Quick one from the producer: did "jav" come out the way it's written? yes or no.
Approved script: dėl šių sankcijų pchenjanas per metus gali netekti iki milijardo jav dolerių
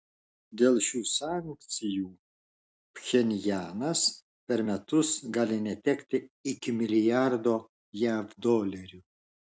yes